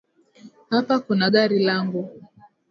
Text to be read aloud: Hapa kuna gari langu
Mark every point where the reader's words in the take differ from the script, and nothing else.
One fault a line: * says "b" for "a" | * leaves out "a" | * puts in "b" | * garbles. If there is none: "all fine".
all fine